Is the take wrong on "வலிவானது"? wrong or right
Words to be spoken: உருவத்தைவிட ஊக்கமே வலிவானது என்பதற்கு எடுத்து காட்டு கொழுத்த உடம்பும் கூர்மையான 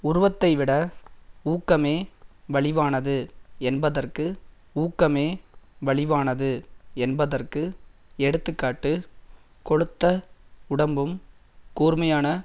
right